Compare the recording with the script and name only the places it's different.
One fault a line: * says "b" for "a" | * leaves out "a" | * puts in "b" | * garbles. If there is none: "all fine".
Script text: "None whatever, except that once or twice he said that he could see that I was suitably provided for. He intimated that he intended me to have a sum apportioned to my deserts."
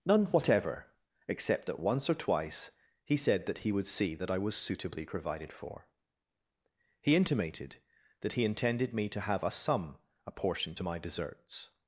* says "would" for "could"